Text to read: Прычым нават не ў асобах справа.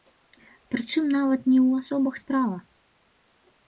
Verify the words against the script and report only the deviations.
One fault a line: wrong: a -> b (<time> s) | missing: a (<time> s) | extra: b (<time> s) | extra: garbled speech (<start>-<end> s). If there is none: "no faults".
no faults